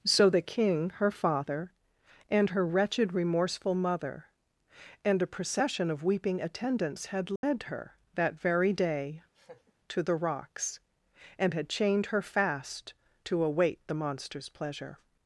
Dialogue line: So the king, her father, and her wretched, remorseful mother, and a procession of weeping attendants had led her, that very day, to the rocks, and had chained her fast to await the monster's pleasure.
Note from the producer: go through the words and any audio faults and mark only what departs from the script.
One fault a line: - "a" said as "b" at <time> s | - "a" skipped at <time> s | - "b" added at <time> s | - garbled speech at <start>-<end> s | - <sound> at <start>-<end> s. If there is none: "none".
- dropout at 7.4-7.4 s
- laugh at 9.3-9.7 s